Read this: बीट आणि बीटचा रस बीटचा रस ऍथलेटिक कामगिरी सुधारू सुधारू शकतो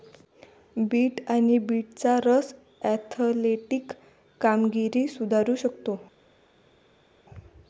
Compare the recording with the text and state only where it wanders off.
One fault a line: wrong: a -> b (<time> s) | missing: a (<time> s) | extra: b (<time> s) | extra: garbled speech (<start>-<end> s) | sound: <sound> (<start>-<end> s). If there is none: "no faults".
missing: बीटचा रस (2.5 s)
missing: सुधारू (5.5 s)